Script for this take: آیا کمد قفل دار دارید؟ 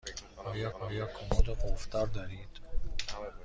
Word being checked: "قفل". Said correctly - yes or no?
yes